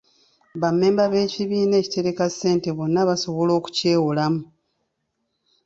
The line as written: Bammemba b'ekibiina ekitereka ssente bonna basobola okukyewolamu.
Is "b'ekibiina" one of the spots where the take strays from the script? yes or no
no